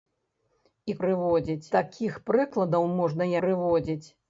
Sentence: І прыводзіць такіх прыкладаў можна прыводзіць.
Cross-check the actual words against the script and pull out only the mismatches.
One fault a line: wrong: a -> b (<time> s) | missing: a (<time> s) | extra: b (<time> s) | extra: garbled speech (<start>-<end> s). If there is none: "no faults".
no faults